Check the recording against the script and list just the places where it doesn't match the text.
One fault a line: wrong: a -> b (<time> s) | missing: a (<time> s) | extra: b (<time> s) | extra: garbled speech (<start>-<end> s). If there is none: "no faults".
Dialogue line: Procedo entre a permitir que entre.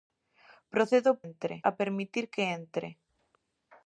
no faults